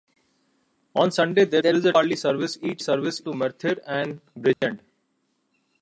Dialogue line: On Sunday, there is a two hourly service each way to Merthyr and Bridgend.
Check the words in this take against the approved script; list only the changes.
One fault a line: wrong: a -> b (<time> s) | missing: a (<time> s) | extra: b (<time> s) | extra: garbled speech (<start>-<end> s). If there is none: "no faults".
extra: there (1.6 s)
missing: two (1.9 s)
wrong: way -> service (2.8 s)